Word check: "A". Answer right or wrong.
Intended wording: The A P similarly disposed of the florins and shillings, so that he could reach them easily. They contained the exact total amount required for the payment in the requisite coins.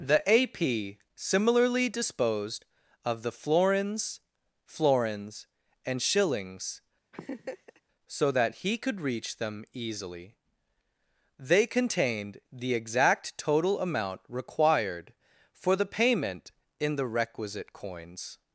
right